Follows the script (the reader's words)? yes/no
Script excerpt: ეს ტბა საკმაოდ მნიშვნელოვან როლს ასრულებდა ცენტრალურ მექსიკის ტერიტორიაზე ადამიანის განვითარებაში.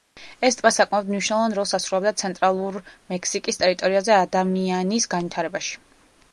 yes